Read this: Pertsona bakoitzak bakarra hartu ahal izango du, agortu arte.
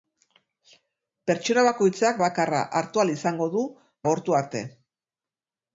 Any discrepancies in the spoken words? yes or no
no